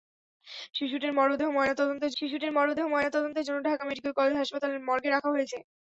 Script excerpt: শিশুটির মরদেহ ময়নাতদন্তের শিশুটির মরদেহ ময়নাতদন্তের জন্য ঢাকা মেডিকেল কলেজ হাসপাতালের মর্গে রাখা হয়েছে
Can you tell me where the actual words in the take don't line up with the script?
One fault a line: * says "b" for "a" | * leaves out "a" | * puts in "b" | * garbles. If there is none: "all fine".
all fine